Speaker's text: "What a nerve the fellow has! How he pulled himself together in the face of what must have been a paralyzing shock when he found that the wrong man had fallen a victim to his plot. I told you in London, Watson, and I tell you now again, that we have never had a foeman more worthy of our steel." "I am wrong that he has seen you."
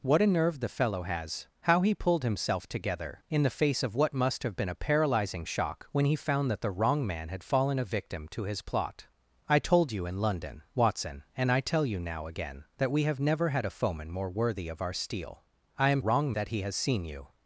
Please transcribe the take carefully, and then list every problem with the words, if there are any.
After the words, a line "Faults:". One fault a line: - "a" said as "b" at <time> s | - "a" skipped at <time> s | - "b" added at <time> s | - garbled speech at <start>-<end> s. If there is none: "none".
"What a nerve the fellow has! How he pulled himself together in the face of what must have been a paralyzing shock when he found that the wrong man had fallen a victim to his plot. I told you in London, Watson, and I tell you now again, that we have never had a foeman more worthy of our steel." "I am wrong that he has seen you."
Faults:
none